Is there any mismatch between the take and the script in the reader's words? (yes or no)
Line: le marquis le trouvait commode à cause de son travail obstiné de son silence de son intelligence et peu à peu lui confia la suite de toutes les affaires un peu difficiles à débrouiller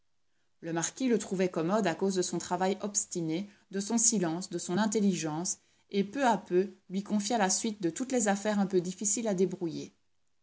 no